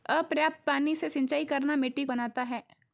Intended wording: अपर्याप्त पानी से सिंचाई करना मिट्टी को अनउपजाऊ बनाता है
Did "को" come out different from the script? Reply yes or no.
yes